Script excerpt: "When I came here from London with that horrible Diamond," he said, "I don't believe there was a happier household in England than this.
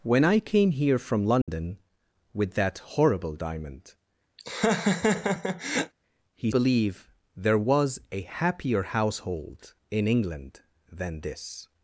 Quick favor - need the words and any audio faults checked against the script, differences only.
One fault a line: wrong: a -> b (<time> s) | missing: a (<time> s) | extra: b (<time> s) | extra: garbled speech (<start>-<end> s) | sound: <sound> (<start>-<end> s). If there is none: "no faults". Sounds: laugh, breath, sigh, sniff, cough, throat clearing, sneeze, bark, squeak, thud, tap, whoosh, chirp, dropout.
sound: dropout (1.4-1.5 s)
sound: laugh (4.4-5.9 s)
missing: said I don't (6.5 s)